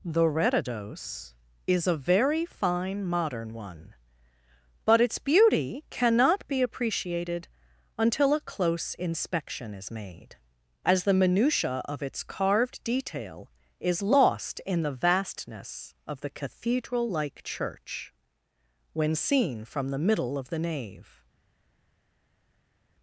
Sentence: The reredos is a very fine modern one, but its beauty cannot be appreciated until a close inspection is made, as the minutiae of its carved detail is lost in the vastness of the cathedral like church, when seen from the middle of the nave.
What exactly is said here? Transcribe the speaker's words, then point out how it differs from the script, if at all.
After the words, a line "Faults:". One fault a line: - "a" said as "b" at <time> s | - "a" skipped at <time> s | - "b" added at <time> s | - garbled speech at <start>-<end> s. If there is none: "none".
The reredos is a very fine modern one, but its beauty cannot be appreciated until a close inspection is made, as the minutiae of its carved detail is lost in the vastness of the cathedral like church, when seen from the middle of the nave.
Faults:
none